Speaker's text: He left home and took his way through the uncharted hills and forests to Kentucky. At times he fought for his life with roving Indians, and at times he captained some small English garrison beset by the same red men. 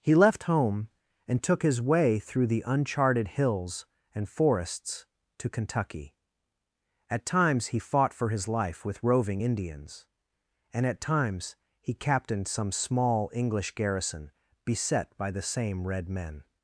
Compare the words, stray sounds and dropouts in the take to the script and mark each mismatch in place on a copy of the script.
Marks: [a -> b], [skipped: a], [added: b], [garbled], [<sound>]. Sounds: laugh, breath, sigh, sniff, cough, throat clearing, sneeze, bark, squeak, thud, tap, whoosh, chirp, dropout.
He left home and took his way through the uncharted hills and forests to Kentucky. At times he fought for his life with roving Indians, and at times he captained some small English garrison beset by the same red men.